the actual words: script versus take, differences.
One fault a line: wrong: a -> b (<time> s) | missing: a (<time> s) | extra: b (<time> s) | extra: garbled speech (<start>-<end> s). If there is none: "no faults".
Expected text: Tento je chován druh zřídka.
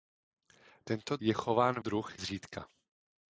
no faults